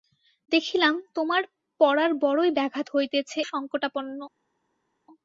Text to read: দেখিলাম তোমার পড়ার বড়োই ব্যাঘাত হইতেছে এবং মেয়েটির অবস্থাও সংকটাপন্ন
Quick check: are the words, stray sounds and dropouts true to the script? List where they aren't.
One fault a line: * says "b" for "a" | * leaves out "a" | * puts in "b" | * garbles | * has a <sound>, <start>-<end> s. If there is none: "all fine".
* leaves out "এবং মেয়েটির অবস্থাও"